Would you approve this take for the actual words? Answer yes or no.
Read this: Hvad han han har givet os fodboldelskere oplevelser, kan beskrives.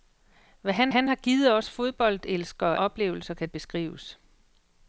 yes